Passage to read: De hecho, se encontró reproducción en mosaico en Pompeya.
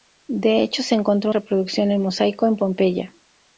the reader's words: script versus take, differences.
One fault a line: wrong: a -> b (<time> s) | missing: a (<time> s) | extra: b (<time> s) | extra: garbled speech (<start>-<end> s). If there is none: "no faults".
no faults